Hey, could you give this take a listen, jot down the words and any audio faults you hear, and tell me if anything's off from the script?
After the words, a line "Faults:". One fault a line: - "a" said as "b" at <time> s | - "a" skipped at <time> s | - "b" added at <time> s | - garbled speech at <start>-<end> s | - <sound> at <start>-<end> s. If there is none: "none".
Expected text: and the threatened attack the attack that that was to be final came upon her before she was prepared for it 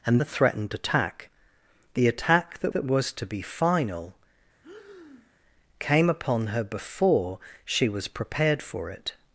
and the threatened attack the attack that that was to be final came upon her before she was prepared for it
Faults:
- breath at 4.6-5.3 s